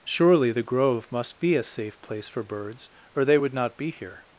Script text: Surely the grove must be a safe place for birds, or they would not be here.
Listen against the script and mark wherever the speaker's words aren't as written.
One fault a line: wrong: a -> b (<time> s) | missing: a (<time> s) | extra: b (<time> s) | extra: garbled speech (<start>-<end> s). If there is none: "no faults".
no faults